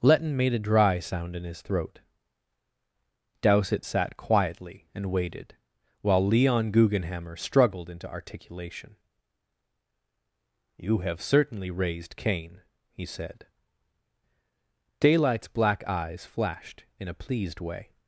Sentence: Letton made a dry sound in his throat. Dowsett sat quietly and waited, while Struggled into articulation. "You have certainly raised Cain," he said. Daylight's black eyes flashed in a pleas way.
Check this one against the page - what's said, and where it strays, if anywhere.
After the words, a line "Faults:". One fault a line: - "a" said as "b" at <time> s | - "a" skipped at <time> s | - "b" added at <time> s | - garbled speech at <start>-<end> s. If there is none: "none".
Letton made a dry sound in his throat. Dowsett sat quietly and waited, while Leon Guggenhammer struggled into articulation. "You have certainly raised Cain," he said. Daylight's black eyes flashed in a pleased way.
Faults:
- "Leon Guggenhammer" added at 6.2 s
- "pleas" said as "pleased" at 17.1 s